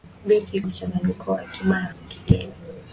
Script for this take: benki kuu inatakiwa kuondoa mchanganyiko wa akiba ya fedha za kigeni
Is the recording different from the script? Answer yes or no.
yes